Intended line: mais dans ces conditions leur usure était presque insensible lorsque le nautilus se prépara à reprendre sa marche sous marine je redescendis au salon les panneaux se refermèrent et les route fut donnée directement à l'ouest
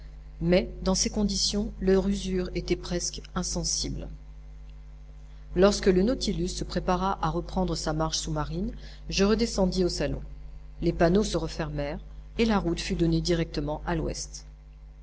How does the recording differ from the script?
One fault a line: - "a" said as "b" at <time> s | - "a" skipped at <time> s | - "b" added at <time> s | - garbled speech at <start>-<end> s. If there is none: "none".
- "les" said as "la" at 12.4 s